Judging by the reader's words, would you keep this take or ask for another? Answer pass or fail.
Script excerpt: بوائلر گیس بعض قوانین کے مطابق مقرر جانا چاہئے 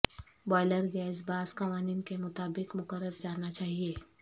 pass